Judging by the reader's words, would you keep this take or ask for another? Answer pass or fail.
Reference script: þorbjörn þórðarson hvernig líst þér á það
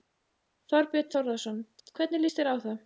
pass